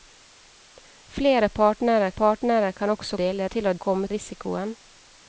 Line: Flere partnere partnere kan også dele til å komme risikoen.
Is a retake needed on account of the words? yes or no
no